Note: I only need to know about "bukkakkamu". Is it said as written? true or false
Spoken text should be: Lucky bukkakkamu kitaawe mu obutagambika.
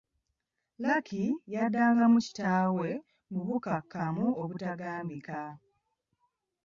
false